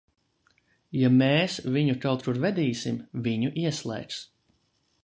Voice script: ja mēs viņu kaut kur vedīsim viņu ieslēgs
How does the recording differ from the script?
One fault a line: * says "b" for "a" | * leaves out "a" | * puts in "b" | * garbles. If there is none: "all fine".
all fine